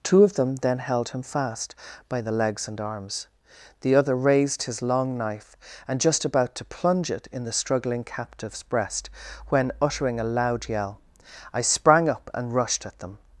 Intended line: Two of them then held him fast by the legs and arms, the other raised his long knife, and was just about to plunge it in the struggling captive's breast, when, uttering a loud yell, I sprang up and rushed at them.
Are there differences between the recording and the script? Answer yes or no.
yes